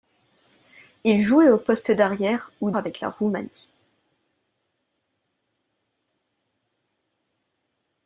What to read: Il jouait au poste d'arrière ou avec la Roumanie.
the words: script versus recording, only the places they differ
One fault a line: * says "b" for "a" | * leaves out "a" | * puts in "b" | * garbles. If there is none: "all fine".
all fine